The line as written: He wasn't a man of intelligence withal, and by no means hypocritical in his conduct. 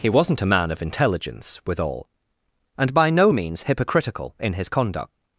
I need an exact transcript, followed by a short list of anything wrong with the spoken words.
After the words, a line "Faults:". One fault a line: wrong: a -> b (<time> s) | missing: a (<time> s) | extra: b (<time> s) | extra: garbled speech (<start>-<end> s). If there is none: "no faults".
He wasn't a man of intelligence withal, and by no means hypocritical in his conduct.
Faults:
no faults